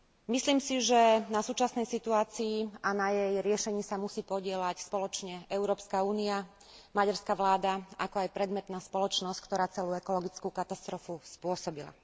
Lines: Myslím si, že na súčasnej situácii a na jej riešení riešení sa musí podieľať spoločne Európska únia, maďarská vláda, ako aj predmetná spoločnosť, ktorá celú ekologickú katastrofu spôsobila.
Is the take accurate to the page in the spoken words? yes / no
no